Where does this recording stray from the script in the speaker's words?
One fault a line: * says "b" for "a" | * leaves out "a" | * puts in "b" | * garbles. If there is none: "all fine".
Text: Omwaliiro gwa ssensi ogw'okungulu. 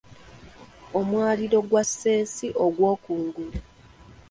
all fine